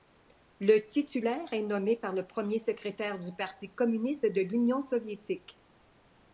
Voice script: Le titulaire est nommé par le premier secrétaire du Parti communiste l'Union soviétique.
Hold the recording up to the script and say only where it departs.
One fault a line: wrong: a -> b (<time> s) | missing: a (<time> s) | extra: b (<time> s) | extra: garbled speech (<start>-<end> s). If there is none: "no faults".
extra: de (4.2 s)